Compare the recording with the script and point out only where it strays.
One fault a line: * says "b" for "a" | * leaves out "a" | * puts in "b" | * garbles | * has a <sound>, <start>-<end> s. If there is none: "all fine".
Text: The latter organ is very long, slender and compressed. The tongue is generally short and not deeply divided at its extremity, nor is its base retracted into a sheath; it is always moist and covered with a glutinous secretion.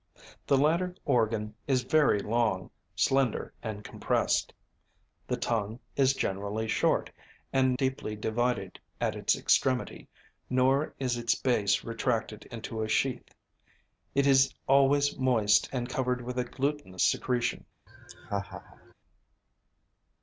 * leaves out "not"
* has a laugh, 17.9-18.9 s